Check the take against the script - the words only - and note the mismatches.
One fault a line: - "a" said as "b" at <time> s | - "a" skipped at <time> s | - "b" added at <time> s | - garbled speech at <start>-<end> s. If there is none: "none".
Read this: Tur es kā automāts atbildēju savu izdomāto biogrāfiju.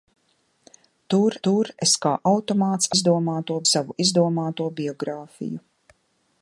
- "tur" added at 1.5 s
- "atbildēju" said as "izdomāto" at 3.0 s